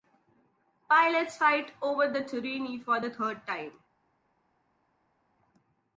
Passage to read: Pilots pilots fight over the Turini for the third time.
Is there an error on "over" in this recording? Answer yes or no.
no